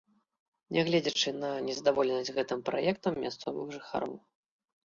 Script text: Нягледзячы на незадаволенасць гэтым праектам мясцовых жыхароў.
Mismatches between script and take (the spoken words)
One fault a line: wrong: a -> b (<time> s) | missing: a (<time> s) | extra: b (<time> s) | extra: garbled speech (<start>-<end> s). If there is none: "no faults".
no faults